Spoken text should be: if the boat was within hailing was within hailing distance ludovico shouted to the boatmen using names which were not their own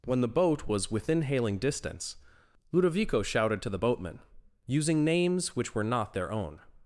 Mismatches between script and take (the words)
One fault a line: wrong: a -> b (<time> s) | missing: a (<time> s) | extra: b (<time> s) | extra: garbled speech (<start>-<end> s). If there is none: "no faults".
wrong: if -> when (0.1 s)
missing: was within hailing (1.6 s)